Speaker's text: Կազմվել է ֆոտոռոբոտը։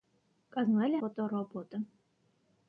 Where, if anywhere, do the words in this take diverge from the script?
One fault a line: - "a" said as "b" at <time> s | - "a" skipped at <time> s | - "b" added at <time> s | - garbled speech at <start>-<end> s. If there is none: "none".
none